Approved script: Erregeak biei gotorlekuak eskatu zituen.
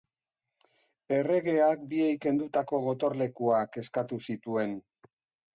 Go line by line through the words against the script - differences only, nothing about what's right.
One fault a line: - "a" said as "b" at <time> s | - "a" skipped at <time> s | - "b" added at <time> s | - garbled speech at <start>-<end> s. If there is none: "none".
- "kendutako" added at 2.2 s